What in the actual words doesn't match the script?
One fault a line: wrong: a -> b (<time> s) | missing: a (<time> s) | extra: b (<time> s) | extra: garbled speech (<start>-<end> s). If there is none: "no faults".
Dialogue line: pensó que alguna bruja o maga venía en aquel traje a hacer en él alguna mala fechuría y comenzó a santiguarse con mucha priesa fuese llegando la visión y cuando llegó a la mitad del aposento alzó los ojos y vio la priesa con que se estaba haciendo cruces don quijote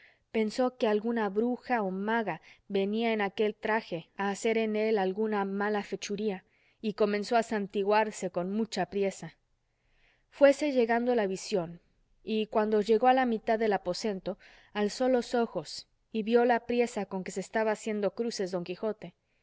no faults